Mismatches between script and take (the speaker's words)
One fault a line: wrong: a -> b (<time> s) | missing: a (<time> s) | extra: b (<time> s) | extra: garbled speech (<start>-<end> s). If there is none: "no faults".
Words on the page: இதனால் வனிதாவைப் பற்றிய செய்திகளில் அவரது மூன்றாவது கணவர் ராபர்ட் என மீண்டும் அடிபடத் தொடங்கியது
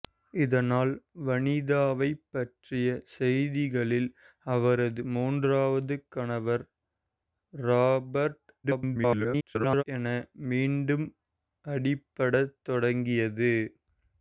extra: garbled speech (8.6-9.8 s)